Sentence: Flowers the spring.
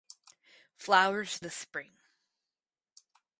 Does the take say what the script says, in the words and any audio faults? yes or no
yes